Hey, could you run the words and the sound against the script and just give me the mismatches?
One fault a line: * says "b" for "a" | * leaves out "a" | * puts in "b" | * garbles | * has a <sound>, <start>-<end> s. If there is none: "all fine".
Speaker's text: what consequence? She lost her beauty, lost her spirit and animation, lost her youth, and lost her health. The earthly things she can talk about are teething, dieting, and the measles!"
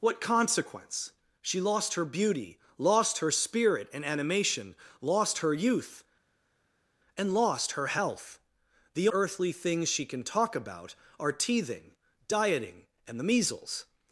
all fine